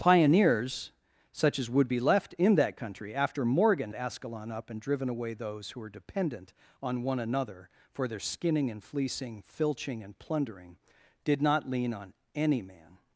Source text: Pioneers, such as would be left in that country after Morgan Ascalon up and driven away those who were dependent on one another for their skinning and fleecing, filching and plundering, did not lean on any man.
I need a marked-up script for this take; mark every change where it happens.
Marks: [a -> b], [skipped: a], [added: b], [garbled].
Pioneers, such as would be left in that country after Morgan Ascalon up and driven away those who were dependent on one another for their skinning and fleecing, filching and plundering, did not lean on any man.